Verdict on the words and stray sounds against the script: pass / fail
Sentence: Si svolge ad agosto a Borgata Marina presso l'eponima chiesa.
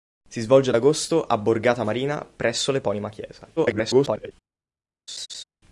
fail